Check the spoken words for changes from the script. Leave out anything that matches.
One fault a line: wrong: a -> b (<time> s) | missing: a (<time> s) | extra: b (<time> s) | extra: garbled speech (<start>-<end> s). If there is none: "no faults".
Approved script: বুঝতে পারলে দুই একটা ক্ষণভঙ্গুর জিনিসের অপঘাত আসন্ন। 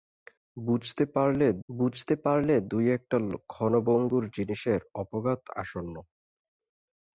extra: বুঝতে পারলে (1.7 s)